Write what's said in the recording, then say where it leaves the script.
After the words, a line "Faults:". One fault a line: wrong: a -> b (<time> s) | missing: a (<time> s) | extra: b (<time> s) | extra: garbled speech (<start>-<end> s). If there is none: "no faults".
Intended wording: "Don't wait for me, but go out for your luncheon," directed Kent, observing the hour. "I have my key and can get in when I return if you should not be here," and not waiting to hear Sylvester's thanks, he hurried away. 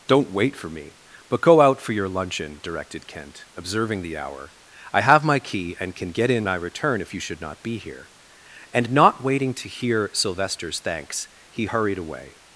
"Don't wait for me, but go out for your luncheon," directed Kent, observing the hour. "I have my key and can get in I return if you should not be here," and not waiting to hear Sylvester's thanks, he hurried away.
Faults:
missing: when (6.5 s)